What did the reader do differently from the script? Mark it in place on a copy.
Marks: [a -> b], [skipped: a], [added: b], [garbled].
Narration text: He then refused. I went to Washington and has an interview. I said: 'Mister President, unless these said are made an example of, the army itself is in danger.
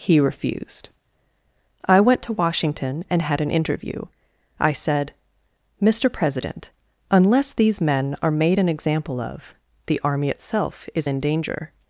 He [skipped: then] refused. I went to Washington and [has -> had] an interview. I said: 'Mister President, unless these [said -> men] are made an example of, the army itself is in danger.